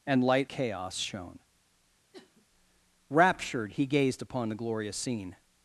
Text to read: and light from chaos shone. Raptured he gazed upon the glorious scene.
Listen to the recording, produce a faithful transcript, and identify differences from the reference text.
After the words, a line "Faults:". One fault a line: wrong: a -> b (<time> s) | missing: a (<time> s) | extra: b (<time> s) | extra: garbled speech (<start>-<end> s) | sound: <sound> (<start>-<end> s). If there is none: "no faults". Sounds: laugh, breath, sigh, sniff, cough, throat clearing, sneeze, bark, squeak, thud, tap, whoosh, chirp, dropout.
and light chaos shone. Raptured he gazed upon the glorious scene.
Faults:
missing: from (0.5 s)
sound: sniff (2.1-2.5 s)